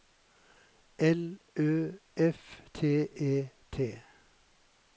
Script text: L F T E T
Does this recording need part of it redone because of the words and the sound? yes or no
yes